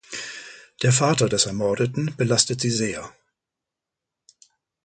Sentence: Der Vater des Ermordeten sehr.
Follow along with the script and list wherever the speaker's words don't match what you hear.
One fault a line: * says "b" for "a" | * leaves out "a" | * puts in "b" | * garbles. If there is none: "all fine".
* puts in "belastet sie"